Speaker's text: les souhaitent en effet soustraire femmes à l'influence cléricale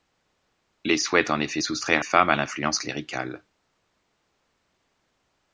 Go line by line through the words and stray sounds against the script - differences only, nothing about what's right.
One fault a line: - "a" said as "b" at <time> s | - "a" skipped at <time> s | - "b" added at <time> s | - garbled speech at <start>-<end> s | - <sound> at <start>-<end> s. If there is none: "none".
none